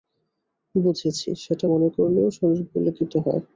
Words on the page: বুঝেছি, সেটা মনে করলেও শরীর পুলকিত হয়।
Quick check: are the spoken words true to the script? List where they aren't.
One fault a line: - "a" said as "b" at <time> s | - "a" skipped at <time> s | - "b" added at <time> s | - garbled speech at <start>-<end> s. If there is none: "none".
none